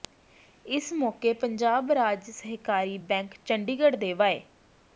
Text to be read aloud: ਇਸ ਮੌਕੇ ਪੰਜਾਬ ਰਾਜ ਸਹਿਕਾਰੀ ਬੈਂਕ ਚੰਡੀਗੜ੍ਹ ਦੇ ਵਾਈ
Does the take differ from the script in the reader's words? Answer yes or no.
no